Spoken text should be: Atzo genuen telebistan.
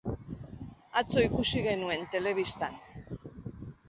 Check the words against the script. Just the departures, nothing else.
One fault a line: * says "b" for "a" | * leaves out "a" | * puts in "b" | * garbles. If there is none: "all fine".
* puts in "ikusi"